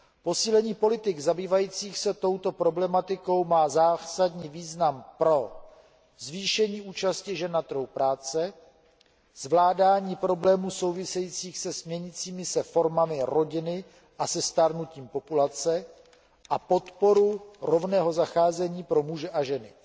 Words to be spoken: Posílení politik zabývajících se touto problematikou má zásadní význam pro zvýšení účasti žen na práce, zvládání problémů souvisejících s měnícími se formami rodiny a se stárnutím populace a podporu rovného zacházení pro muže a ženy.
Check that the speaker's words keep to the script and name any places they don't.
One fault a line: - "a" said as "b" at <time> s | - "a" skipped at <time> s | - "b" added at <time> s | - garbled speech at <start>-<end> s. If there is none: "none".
- "trhu" added at 7.6 s